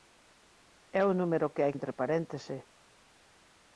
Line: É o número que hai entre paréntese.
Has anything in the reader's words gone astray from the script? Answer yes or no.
no